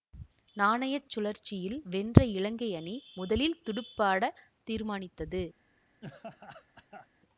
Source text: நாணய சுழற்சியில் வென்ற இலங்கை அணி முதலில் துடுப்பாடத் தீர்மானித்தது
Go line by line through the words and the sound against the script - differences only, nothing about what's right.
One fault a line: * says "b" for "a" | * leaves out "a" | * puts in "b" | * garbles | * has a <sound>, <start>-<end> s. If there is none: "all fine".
* has a laugh, 6.0-7.1 s